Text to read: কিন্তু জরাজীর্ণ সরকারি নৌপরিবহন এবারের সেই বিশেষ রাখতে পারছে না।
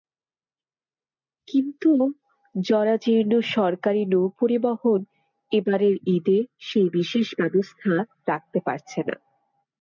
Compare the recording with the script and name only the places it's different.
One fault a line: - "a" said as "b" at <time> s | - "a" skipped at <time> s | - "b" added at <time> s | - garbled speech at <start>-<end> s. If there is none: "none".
- "ঈদে" added at 6.2 s
- "ব্যবস্থা" added at 7.4 s